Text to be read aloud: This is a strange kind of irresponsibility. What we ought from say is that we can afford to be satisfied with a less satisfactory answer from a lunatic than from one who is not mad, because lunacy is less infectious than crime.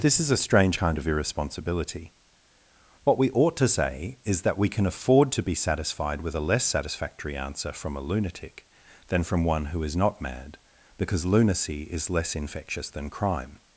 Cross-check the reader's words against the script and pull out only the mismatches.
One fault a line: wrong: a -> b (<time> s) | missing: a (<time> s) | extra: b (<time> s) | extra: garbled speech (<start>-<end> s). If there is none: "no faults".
wrong: from -> to (3.6 s)